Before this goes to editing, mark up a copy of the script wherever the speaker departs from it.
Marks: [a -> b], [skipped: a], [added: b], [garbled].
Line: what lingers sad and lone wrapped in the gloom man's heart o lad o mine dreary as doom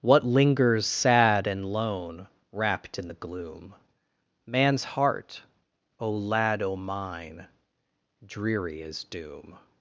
what lingers sad and lone wrapped in the gloom man's heart o lad o mine dreary as doom